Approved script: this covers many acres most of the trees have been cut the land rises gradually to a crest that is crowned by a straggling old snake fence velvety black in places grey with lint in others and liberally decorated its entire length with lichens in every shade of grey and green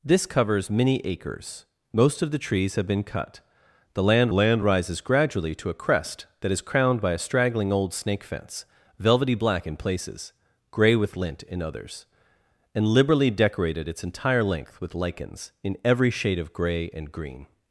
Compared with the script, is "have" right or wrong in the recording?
right